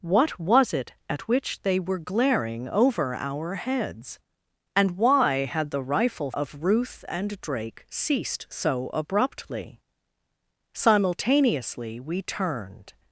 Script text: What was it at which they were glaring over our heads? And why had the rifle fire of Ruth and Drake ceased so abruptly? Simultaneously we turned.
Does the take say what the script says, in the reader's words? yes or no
no